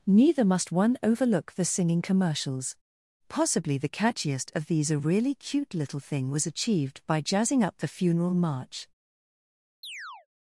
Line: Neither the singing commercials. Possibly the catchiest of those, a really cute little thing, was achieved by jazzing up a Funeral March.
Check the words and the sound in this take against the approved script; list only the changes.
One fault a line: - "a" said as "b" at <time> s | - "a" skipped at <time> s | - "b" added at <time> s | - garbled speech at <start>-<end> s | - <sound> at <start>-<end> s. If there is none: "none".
- "must one overlook" added at 0.4 s
- "those" said as "these" at 4.7 s
- "a" said as "the" at 7.8 s
- chirp at 9.8-10.3 s